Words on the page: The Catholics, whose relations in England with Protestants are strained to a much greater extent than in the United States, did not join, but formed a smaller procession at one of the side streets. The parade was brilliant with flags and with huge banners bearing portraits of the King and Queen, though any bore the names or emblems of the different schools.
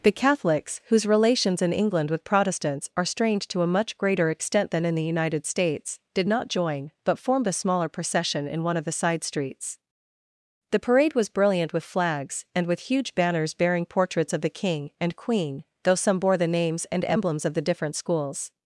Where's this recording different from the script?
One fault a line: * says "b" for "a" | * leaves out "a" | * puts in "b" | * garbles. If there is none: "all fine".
* says "in" for "at"
* says "some" for "any"
* says "and" for "or"